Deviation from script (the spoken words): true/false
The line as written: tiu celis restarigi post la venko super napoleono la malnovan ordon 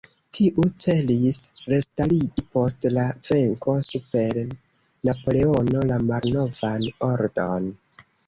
false